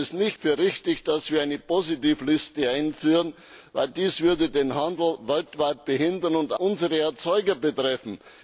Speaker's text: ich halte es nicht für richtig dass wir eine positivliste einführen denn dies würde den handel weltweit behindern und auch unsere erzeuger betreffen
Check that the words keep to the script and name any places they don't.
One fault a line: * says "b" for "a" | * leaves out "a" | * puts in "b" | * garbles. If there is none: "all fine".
* leaves out "nicht"
* leaves out "auch"